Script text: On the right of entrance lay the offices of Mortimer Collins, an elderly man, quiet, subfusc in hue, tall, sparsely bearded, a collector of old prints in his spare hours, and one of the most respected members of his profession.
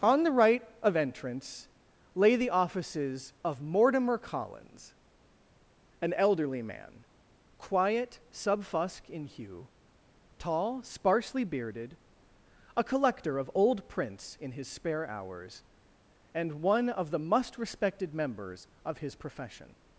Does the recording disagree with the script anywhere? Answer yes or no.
yes